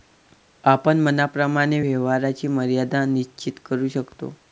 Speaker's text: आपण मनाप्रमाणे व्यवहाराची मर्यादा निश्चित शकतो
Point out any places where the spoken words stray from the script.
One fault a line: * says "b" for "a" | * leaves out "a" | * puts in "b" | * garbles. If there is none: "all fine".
* puts in "करू"